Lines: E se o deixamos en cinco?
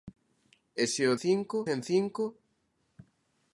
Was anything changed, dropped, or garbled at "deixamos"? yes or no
yes